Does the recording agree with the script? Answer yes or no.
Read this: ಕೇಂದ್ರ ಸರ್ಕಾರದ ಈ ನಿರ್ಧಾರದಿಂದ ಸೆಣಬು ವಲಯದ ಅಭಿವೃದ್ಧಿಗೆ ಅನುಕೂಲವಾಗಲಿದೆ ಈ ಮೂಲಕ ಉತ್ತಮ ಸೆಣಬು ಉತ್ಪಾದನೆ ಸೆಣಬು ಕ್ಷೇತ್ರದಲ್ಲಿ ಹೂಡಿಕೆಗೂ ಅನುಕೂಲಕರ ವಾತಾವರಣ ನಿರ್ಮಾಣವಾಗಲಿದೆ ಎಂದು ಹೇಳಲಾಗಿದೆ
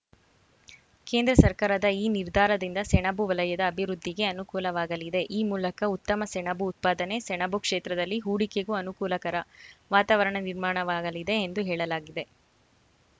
yes